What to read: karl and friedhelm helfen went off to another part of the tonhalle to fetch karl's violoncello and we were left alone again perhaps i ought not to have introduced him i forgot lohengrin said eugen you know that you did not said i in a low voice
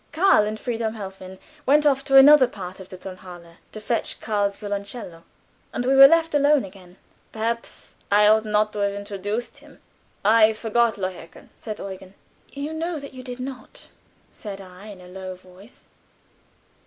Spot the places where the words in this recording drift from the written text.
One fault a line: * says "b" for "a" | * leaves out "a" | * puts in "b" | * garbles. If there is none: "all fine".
all fine